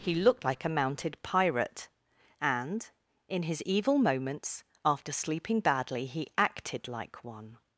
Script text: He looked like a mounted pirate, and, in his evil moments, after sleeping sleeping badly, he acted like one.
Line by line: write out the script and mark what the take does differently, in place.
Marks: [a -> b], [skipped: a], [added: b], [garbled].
He looked like a mounted pirate, and, in his evil moments, after sleeping [skipped: sleeping] badly, he acted like one.